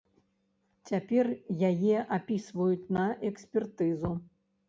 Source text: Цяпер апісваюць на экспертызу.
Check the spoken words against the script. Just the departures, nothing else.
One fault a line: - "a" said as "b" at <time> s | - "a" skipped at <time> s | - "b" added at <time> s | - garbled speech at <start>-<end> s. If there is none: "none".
- "яе" added at 1.7 s